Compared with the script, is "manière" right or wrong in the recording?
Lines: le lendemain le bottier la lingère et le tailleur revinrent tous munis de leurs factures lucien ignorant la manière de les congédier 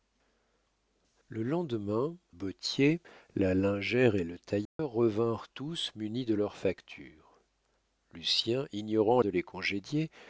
wrong